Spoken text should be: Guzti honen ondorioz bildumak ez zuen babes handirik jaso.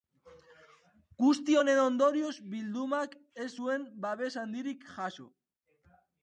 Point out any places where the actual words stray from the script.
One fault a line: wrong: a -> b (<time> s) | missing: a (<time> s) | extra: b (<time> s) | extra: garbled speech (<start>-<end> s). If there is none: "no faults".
no faults